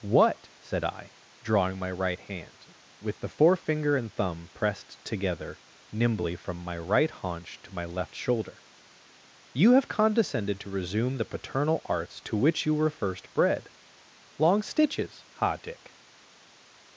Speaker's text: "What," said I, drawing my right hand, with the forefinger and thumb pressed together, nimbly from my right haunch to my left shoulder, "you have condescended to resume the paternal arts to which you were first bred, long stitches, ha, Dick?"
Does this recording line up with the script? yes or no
yes